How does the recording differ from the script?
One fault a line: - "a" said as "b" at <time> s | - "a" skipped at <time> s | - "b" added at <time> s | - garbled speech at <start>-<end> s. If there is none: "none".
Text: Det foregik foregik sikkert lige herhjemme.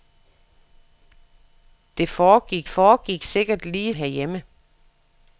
none